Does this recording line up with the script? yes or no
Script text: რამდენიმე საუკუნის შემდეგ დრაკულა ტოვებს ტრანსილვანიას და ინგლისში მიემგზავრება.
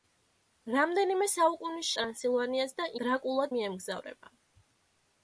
no